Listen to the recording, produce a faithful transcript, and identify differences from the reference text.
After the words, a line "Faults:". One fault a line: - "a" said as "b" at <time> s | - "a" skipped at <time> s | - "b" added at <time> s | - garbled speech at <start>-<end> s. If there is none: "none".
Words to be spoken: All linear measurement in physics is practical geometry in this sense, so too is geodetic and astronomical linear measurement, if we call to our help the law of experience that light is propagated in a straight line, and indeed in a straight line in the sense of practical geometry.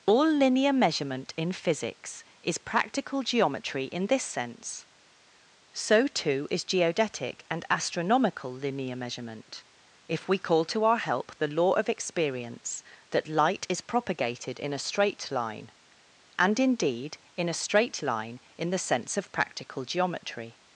All linear measurement in physics is practical geometry in this sense, so too is geodetic and astronomical linear measurement, if we call to our help the law of experience that light is propagated in a straight line, and indeed in a straight line in the sense of practical geometry.
Faults:
none